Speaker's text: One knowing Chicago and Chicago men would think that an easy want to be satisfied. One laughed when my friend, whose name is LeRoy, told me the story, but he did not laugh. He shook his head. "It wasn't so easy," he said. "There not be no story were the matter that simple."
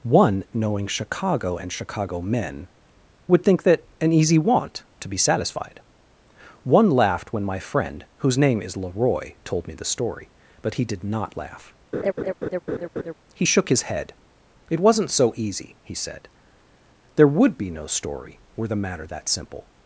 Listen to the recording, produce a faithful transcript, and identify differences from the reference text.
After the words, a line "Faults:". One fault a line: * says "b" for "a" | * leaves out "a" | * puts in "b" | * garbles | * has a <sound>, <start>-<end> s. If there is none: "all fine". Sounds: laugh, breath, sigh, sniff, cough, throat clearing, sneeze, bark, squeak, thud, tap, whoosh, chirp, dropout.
One knowing Chicago and Chicago men would think that an easy want to be satisfied. One laughed when my friend, whose name is LeRoy, told me the story, but he did not laugh. He shook his head. "It wasn't so easy," he said. "There would be no story were the matter that simple."
Faults:
* has a laugh, 11.9-13.1 s
* says "would" for "not"